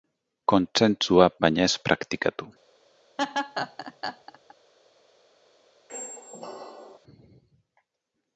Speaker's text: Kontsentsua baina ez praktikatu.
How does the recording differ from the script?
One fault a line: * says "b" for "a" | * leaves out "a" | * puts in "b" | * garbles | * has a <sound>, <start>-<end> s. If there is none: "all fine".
* has a laugh, 3.2-4.5 s
* has a squeak, 5.9-7.0 s